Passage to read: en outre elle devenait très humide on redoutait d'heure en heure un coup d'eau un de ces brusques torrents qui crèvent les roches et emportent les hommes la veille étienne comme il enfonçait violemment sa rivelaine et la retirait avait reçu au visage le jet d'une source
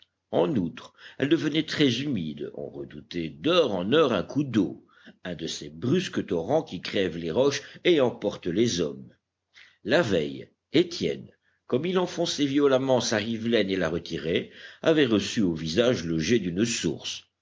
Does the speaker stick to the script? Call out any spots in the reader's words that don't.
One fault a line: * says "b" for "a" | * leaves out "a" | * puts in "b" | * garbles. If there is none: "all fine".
all fine